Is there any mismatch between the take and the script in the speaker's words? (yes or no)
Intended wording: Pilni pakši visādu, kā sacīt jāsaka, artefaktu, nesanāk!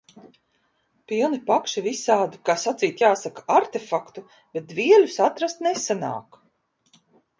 yes